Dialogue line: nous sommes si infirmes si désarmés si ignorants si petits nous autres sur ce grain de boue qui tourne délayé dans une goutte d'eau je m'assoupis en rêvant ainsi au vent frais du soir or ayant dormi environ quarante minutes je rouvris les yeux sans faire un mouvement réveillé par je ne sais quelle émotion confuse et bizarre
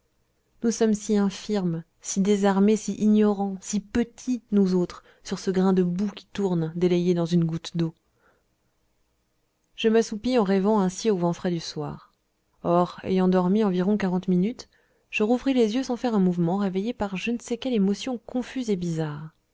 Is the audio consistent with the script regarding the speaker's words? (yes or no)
yes